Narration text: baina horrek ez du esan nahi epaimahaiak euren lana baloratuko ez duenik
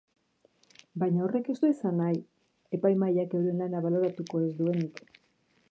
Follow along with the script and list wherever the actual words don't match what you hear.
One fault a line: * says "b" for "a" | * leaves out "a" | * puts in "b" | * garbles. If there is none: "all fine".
all fine